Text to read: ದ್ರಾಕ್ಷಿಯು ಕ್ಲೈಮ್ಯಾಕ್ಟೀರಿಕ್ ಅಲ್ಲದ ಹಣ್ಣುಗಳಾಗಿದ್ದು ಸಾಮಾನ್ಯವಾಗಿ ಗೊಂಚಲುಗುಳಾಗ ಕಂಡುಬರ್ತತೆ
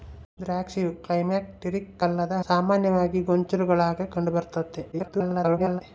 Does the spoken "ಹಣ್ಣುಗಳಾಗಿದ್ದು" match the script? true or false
false